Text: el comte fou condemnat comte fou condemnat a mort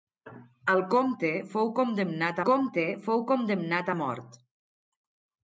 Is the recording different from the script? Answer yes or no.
no